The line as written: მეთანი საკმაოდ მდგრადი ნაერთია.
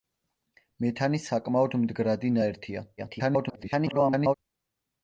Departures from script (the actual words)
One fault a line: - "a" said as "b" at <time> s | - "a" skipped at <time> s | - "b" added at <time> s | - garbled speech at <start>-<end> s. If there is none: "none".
- garbled speech at 3.0-4.3 s